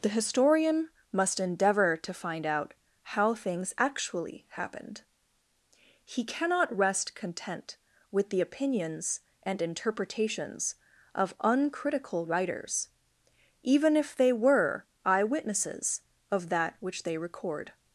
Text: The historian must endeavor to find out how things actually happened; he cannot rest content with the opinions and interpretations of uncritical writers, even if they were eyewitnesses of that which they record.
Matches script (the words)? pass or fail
pass